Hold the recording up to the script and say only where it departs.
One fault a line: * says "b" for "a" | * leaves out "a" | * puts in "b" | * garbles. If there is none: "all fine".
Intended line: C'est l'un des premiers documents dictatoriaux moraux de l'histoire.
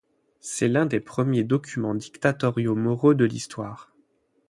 all fine